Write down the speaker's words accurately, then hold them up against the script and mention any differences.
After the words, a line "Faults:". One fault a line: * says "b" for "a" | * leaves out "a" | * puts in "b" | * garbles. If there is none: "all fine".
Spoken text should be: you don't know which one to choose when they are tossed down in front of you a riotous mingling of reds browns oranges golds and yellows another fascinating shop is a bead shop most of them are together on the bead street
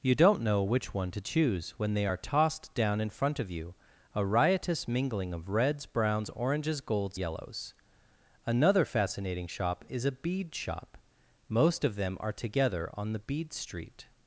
you don't know which one to choose when they are tossed down in front of you a riotous mingling of reds browns oranges golds yellows another fascinating shop is a bead shop most of them are together on the bead street
Faults:
* leaves out "and"